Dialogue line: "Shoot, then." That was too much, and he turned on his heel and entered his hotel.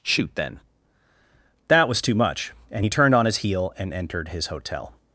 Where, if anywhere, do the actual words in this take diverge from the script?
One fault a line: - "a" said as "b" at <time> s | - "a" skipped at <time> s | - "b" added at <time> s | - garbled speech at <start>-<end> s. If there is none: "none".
none